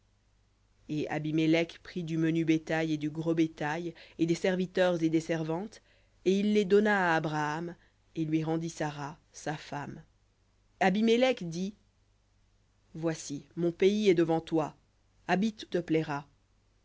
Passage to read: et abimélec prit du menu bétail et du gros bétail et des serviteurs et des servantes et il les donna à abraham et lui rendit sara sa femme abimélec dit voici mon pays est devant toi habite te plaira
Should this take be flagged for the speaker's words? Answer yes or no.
no